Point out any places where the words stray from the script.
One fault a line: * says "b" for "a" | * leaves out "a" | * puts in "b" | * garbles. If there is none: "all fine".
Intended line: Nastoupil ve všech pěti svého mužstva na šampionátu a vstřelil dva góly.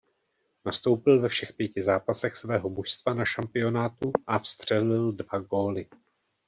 * puts in "zápasech"